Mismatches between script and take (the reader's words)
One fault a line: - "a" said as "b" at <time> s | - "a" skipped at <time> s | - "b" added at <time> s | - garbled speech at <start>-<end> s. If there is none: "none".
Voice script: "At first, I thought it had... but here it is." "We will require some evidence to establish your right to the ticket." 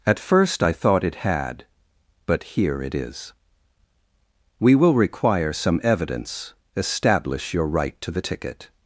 - "to" skipped at 6.5 s